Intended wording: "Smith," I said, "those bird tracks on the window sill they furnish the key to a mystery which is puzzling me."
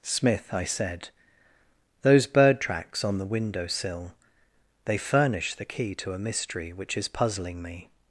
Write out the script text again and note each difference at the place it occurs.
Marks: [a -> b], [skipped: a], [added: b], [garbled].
"Smith," I said, "those bird tracks on the window sill they furnish the key to a mystery which is puzzling me."